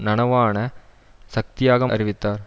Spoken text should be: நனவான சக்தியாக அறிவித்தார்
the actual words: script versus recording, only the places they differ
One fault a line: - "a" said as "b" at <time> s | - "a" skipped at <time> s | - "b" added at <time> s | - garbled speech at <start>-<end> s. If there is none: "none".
none